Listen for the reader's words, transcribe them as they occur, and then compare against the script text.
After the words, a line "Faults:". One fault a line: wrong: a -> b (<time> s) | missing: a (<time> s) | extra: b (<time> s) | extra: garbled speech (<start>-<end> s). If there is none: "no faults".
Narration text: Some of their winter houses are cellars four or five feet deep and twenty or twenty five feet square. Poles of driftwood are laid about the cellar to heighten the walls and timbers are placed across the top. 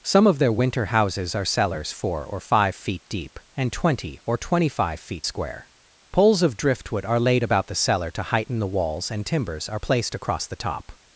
Some of their winter houses are cellars four or five feet deep and twenty or twenty five feet square. Poles of driftwood are laid about the cellar to heighten the walls and timbers are placed across the top.
Faults:
no faults